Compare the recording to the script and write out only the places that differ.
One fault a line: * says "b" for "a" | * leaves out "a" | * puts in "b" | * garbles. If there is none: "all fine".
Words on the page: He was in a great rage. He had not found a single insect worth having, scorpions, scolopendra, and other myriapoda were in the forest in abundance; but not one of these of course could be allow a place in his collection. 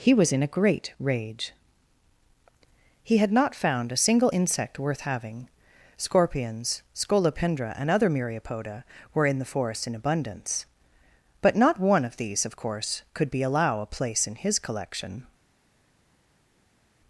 all fine